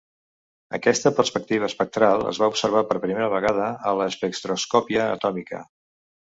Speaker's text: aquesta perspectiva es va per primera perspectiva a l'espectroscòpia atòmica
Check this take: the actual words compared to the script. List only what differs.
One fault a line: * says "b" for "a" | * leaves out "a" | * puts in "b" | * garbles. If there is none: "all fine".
* puts in "espectral"
* puts in "observar"
* says "vegada" for "perspectiva"